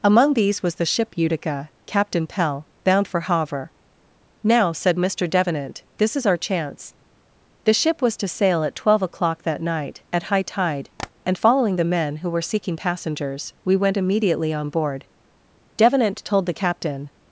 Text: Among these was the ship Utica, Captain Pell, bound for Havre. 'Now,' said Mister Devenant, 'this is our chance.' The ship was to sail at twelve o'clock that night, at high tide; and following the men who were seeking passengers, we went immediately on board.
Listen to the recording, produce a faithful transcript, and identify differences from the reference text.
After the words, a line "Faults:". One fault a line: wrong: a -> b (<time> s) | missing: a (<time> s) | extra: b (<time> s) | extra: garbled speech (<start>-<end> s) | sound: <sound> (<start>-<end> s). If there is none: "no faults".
Among these was the ship Utica, Captain Pell, bound for Havre. 'Now,' said Mister Devenant, 'this is our chance.' The ship was to sail at twelve o'clock that night, at high tide; and following the men who were seeking passengers, we went immediately on board. Devenant told the captain
Faults:
sound: tap (11.0-11.1 s)
extra: Devenant told the captain (15.8 s)